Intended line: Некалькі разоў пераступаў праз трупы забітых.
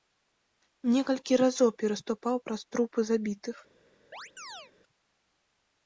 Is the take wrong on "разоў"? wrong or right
right